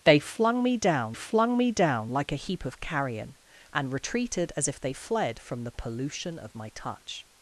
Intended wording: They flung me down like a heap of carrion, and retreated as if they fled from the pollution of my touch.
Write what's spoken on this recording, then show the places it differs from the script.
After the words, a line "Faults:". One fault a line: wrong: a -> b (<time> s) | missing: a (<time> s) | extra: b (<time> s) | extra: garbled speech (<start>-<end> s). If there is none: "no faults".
They flung me down flung me down like a heap of carrion, and retreated as if they fled from the pollution of my touch.
Faults:
extra: flung me down (1.1 s)